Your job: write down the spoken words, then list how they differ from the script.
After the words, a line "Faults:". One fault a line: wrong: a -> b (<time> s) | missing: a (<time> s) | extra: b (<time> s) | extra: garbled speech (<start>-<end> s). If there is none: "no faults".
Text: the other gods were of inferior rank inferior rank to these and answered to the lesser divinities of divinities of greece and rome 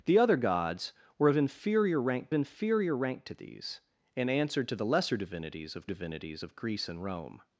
the other gods were of inferior rank inferior rank to these and answered to the lesser divinities of divinities of greece and rome
Faults:
no faults